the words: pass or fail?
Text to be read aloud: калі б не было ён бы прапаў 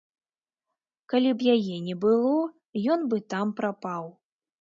fail